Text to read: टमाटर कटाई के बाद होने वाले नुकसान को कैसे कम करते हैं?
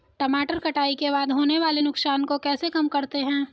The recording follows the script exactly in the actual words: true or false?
true